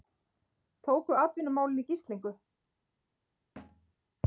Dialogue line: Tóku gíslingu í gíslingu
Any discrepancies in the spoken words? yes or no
yes